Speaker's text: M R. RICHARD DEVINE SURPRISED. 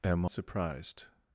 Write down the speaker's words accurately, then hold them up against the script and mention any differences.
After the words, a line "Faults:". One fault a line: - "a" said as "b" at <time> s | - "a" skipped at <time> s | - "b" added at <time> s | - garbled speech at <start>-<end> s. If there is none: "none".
M SURPRISED.
Faults:
- "R RICHARD DEVINE" skipped at 0.2 s